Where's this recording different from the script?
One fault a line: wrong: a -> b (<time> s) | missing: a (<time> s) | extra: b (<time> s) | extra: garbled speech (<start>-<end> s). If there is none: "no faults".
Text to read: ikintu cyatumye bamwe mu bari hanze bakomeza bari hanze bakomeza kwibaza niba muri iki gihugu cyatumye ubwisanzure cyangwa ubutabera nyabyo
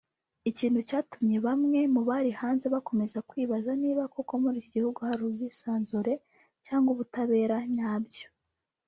missing: bari hanze bakomeza (3.2 s)
extra: koko (4.1 s)
wrong: cyatumye -> hari (5.1 s)